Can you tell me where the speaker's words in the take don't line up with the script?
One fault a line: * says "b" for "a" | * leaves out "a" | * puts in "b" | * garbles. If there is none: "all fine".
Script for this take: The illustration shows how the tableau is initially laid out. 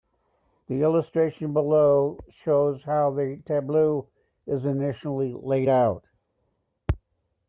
* puts in "below"